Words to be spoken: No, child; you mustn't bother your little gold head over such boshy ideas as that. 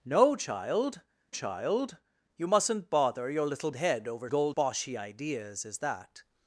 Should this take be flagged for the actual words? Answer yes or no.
yes